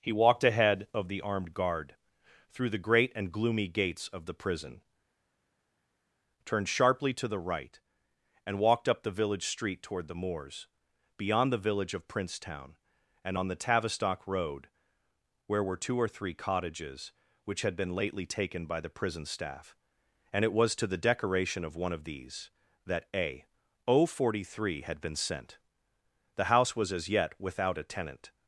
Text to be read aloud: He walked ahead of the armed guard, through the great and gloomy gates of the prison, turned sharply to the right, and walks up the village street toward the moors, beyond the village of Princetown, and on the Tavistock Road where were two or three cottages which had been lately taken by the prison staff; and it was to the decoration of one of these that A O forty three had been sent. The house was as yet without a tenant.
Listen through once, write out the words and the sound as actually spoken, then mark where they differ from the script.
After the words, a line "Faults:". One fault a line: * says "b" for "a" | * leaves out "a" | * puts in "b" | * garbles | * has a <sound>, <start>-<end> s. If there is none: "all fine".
He walked ahead of the armed guard, through the great and gloomy gates of the prison, turned sharply to the right, and walked up the village street toward the moors, beyond the village of Princetown, and on the Tavistock Road where were two or three cottages which had been lately taken by the prison staff; and it was to the decoration of one of these that A O forty three had been sent. The house was as yet without a tenant.
Faults:
* says "walked" for "walks"